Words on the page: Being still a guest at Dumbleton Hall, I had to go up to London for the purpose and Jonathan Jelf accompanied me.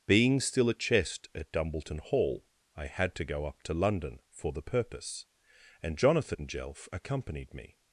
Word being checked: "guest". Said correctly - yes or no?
no